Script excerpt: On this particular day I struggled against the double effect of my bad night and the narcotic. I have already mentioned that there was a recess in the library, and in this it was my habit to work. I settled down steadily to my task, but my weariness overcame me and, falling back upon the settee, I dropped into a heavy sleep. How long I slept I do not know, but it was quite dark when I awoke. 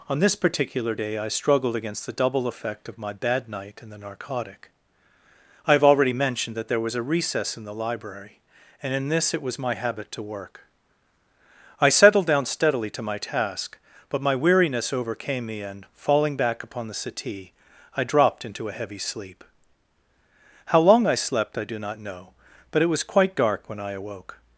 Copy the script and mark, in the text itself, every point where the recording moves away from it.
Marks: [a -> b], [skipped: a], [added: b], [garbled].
On this particular day I struggled against the double effect of my bad night and the narcotic. I have already mentioned that there was a recess in the library, and in this it was my habit to work. I settled down steadily to my task, but my weariness overcame me and, falling back upon the settee, I dropped into a heavy sleep. How long I slept I do not know, but it was quite dark when I awoke.